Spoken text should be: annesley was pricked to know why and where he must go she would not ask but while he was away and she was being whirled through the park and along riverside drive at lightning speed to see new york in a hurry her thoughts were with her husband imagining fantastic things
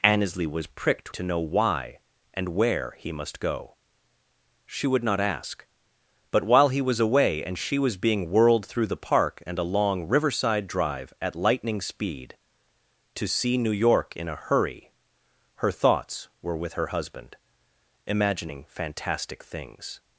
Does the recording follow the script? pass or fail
pass